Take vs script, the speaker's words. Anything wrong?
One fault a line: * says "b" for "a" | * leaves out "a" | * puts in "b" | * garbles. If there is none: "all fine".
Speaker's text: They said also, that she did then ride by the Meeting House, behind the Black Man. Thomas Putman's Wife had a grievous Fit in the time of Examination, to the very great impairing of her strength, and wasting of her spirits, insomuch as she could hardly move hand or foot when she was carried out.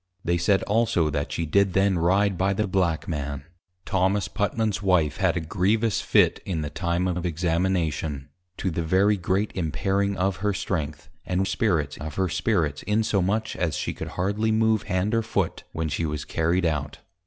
* leaves out "Meeting House behind"
* puts in "of"
* says "spirits" for "wasting"